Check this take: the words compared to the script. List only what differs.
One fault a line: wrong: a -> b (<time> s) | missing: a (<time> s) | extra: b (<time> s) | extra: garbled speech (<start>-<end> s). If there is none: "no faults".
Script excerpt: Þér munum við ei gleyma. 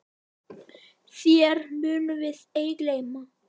no faults